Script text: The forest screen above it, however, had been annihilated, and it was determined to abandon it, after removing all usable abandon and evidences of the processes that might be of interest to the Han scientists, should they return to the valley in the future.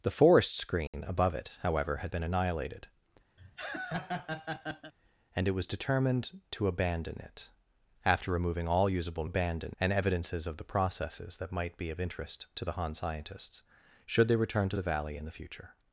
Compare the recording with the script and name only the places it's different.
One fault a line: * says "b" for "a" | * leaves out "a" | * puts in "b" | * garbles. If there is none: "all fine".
all fine